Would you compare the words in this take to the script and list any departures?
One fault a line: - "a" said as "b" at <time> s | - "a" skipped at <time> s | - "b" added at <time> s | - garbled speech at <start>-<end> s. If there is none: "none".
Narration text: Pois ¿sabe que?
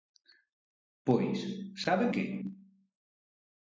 none